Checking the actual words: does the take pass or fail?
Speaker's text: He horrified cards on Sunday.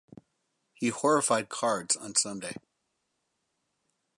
pass